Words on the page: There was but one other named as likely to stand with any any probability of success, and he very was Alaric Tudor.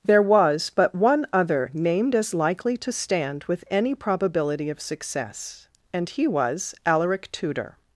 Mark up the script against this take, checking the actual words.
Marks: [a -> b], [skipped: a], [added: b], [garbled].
There was but one other named as likely to stand with any [skipped: any] probability of success, and he [skipped: very] was Alaric Tudor.